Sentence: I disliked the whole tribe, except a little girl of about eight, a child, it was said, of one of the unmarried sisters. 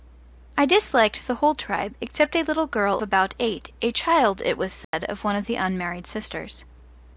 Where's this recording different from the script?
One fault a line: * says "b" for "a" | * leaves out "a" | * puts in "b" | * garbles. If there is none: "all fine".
* leaves out "of"